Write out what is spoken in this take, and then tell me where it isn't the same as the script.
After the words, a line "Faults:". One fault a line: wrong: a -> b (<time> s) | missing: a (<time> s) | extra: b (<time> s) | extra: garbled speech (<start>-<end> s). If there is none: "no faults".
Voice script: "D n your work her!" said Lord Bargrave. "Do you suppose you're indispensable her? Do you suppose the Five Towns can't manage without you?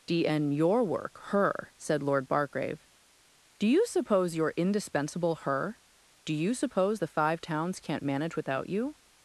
"D n your work her!" said Lord Bargrave. "Do you suppose you're indispensable her? Do you suppose the Five Towns can't manage without you?
Faults:
no faults